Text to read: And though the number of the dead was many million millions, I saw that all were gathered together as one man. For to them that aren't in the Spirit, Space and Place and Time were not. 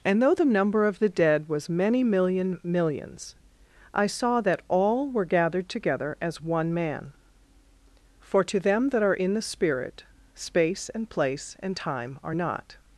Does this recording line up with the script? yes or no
no